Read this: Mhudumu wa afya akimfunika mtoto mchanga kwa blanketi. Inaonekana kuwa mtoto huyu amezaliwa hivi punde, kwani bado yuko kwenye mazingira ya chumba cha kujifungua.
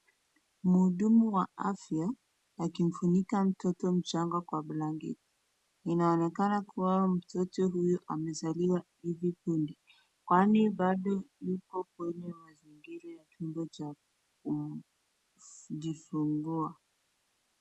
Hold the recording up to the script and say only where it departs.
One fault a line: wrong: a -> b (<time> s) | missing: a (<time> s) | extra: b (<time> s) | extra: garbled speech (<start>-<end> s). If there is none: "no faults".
no faults